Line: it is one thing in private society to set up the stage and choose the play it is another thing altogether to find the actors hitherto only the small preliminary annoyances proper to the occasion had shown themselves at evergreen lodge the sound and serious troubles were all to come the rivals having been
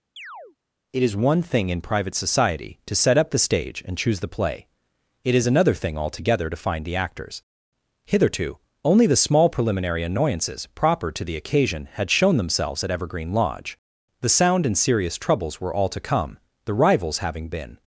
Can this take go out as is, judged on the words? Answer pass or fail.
pass